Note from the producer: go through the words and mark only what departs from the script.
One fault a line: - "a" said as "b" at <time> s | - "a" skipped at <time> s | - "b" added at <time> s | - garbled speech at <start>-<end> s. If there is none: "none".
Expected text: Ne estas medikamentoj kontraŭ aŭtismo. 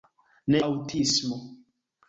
- "estas medikamentoj kontraŭ" skipped at 0.6 s